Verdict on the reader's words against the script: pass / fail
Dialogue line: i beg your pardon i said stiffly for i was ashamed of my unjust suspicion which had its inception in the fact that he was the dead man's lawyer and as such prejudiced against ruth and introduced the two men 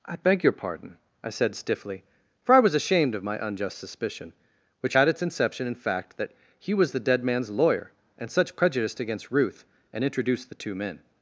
fail